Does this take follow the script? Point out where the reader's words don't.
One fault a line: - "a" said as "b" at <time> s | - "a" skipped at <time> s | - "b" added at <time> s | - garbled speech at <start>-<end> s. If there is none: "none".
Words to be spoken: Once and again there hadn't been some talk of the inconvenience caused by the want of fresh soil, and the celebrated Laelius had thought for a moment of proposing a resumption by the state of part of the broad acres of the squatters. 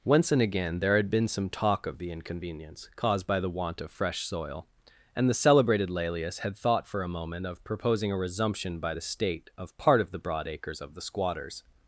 - "hadn't" said as "had" at 0.9 s